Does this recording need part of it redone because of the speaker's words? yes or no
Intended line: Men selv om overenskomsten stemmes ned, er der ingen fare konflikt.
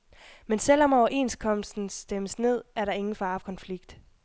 no